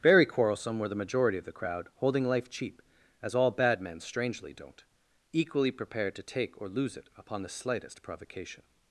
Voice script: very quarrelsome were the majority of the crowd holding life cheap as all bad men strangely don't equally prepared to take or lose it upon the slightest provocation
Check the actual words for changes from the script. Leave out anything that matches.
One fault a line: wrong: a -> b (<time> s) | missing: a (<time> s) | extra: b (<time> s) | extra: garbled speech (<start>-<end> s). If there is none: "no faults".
no faults